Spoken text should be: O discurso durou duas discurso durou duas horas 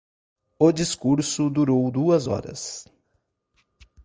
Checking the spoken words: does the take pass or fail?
fail